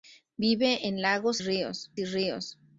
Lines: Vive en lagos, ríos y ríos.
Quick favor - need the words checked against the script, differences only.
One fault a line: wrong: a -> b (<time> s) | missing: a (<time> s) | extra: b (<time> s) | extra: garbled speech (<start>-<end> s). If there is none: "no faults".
no faults